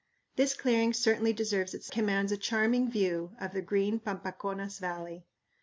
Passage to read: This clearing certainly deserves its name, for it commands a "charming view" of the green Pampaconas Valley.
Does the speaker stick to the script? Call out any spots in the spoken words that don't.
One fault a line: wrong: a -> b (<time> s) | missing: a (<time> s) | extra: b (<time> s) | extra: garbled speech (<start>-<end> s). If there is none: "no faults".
missing: name for it (1.9 s)